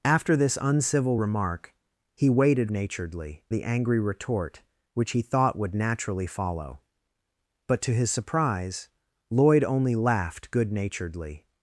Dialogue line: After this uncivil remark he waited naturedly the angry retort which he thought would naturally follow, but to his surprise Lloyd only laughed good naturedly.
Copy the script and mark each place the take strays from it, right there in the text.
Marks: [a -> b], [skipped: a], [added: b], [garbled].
After this uncivil remark he waited naturedly the angry retort which he thought would naturally follow, but to his surprise Lloyd only laughed good naturedly.